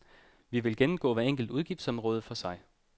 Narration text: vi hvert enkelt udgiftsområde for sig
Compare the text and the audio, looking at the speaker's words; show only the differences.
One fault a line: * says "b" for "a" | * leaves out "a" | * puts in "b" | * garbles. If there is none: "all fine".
* puts in "vil gennemgå"